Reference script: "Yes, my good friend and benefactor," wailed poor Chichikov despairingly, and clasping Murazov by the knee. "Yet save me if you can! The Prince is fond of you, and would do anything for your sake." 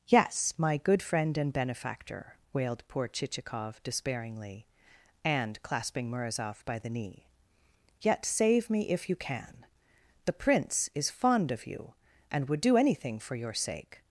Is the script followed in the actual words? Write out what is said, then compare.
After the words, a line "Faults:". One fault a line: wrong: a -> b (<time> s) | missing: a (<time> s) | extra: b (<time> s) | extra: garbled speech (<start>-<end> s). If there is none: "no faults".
"Yes, my good friend and benefactor," wailed poor Chichikov despairingly, and clasping Murazov by the knee. "Yet save me if you can! The Prince is fond of you, and would do anything for your sake."
Faults:
no faults